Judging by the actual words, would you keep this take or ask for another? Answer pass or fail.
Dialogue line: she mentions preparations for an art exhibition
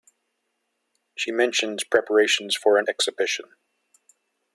fail